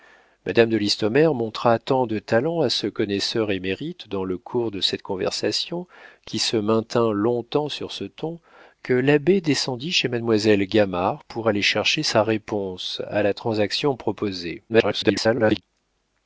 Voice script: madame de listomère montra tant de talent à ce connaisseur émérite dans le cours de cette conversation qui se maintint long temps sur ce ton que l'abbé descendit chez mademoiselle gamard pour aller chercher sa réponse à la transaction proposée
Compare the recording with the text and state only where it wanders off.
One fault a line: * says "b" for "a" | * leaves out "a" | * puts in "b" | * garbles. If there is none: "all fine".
* garbles